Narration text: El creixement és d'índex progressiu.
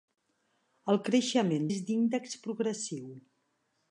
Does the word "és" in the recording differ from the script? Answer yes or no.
no